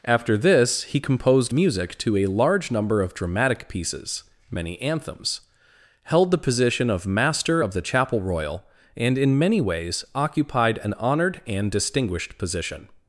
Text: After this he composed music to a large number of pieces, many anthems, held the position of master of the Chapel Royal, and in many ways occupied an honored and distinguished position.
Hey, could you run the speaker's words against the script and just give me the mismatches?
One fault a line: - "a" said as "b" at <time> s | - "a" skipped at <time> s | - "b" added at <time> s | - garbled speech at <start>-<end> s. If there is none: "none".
- "dramatic" added at 3.1 s